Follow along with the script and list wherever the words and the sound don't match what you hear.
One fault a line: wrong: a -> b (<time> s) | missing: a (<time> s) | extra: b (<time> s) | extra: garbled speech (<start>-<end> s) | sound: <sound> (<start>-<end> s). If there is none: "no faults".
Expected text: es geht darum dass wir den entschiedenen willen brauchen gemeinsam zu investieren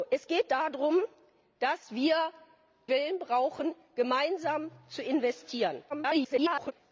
missing: den entschiedenen (2.1 s)
extra: garbled speech (5.9-6.7 s)